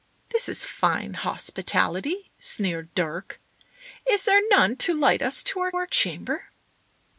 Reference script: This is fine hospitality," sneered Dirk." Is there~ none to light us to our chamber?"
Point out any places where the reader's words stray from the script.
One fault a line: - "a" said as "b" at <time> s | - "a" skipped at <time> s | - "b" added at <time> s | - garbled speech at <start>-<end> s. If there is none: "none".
- "our" added at 5.7 s